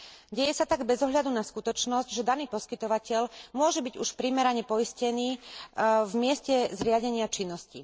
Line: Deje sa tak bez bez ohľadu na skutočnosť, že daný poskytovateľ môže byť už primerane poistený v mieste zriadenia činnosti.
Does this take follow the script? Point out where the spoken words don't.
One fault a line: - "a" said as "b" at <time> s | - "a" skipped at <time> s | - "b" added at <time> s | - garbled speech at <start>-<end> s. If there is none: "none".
- "bez" skipped at 1.0 s